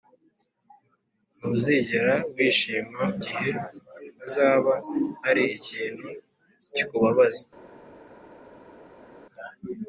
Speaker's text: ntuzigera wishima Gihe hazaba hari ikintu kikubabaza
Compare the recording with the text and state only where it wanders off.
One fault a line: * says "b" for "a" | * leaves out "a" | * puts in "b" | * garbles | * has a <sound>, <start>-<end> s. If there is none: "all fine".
all fine